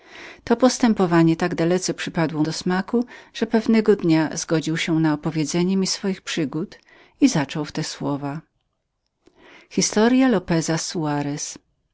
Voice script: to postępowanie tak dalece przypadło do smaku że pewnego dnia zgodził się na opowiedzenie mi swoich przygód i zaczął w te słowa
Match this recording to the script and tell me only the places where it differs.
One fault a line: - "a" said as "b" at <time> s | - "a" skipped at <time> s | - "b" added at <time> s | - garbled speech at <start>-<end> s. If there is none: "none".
none